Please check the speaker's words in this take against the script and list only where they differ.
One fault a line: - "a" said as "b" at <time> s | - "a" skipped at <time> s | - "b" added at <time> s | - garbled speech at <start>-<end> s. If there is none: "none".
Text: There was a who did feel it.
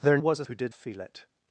none